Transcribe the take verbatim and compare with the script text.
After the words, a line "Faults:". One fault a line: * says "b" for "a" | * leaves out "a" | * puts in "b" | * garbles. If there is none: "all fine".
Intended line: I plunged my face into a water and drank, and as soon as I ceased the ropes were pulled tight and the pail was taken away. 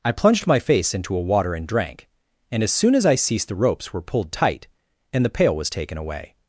I plunged my face into a water and drank, and as soon as I ceased the ropes were pulled tight and the pail was taken away.
Faults:
all fine